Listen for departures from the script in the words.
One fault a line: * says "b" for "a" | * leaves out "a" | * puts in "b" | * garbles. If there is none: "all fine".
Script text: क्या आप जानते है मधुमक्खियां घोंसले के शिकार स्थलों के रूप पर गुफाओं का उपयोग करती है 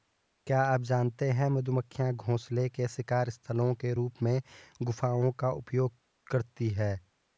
* says "में" for "पर"